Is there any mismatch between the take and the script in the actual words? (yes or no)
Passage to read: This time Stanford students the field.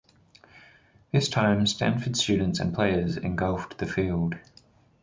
yes